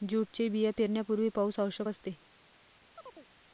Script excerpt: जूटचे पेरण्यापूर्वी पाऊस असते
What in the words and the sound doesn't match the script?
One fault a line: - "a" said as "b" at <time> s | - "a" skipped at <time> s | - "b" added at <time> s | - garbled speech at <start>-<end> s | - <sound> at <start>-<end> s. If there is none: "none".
- "बिया" added at 0.5 s
- "आवश्यक" added at 1.6 s
- chirp at 3.0-3.3 s